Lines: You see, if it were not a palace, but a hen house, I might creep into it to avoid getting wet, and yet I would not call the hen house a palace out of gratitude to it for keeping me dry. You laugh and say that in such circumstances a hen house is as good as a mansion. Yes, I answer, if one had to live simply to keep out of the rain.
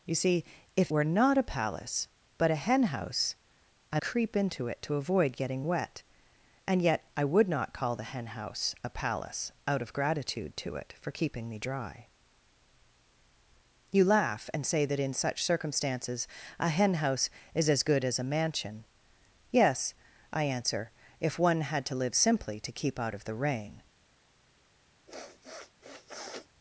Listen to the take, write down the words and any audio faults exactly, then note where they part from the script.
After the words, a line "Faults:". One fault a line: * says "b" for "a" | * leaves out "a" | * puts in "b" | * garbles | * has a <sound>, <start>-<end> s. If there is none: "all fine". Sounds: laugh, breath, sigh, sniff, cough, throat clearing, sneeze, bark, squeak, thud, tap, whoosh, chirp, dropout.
You see, if were not a palace, but a hen house, I creep into it to avoid getting wet, and yet I would not call the hen house a palace out of gratitude to it for keeping me dry. You laugh and say that in such circumstances a hen house is as good as a mansion. Yes, I answer, if one had to live simply to keep out of the rain.
Faults:
* leaves out "it"
* leaves out "might"
* has a sniff, 25.1-26.5 s